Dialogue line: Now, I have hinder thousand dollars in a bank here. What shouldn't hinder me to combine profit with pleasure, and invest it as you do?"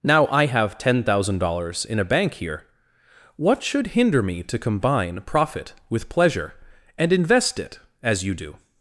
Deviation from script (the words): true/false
true